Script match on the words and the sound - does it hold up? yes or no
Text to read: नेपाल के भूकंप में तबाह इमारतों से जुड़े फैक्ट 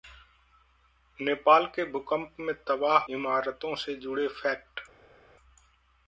yes